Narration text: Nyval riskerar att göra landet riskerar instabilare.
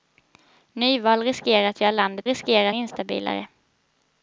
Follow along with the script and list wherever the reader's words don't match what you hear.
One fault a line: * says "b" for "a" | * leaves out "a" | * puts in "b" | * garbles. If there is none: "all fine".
all fine